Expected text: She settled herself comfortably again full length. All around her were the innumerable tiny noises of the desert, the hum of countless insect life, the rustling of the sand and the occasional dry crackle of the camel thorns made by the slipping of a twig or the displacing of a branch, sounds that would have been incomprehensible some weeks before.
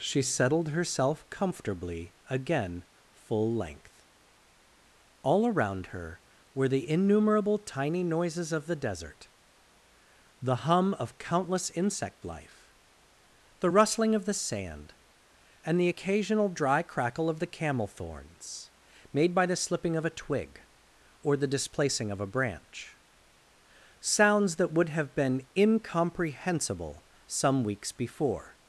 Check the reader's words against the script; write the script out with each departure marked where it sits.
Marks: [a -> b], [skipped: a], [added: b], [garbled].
She settled herself comfortably again full length. All around her were the innumerable tiny noises of the desert, the hum of countless insect life, the rustling of the sand and the occasional dry crackle of the camel thorns made by the slipping of a twig or the displacing of a branch, sounds that would have been incomprehensible some weeks before.